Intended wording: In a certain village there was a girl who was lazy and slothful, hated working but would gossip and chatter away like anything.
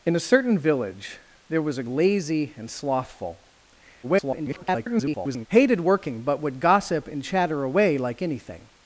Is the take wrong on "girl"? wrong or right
wrong